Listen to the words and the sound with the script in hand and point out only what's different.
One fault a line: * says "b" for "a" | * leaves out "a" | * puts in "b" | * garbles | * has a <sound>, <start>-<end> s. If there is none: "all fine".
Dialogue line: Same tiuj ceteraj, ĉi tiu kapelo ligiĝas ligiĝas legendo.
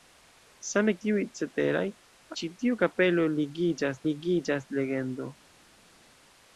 all fine